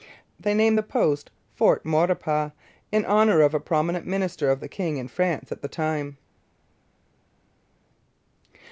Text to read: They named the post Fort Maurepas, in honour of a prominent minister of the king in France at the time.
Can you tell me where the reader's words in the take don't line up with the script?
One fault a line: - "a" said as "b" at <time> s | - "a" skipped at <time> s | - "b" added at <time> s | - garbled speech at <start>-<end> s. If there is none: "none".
none